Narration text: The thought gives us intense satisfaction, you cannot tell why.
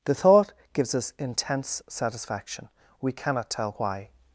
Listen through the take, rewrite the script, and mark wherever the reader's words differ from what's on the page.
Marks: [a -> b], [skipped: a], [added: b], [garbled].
The thought gives us intense satisfaction, [you -> we] cannot tell why.